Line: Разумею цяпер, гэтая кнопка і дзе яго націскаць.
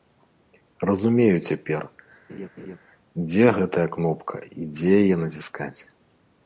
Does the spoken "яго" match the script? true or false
false